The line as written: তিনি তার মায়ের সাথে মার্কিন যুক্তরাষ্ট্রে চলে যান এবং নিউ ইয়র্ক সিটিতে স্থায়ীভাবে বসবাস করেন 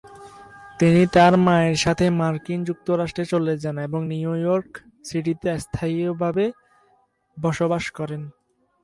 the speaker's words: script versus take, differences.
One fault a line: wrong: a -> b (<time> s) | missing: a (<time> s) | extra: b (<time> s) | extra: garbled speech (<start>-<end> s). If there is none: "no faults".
no faults